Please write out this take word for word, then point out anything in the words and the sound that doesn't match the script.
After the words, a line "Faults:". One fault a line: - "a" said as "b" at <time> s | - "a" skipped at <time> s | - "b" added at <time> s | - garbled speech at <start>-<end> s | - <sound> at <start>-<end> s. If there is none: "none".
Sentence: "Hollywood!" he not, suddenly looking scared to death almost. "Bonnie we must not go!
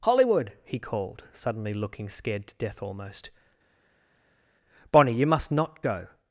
"Hollywood!" he called, suddenly looking scared to death almost. "Bonnie you must not go!
Faults:
- "not" said as "called" at 0.8 s
- "we" said as "you" at 5.1 s